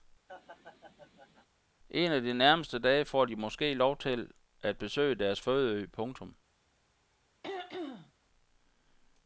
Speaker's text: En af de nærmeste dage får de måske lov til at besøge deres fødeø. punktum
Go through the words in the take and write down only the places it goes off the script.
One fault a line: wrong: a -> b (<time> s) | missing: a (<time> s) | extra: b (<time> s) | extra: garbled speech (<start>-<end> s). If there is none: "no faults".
no faults